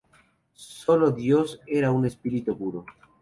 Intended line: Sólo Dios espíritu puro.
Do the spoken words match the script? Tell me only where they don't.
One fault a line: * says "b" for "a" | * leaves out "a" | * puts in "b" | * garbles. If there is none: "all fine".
* puts in "era un"